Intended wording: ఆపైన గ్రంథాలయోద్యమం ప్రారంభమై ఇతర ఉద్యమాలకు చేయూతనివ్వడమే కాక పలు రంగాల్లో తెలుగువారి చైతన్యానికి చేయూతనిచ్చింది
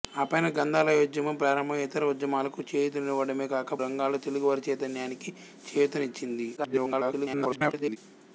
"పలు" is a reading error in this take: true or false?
true